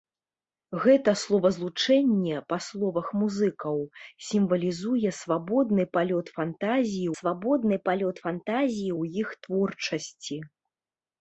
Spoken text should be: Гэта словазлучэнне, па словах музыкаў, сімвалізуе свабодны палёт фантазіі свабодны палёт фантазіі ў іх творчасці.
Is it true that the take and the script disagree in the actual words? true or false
false